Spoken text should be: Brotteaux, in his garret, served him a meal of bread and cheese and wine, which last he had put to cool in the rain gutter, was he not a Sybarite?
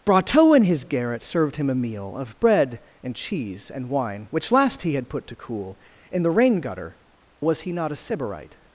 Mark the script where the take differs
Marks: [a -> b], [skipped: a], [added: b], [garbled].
Brotteaux, in his garret, served him a meal of bread and cheese and wine, which last he had put to cool in the rain gutter, was he not a Sybarite?